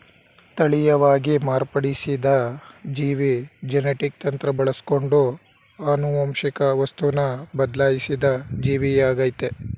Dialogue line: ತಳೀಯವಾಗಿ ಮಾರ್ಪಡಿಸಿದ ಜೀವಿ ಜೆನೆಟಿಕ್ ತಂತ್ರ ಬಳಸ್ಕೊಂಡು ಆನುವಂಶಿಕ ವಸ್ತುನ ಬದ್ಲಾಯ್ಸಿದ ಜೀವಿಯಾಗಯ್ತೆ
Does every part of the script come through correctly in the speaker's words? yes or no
yes